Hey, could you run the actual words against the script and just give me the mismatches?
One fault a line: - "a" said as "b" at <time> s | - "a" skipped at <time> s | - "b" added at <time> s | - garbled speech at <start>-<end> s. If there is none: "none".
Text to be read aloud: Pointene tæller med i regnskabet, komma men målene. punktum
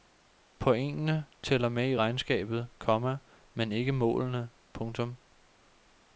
- "ikke" added at 3.7 s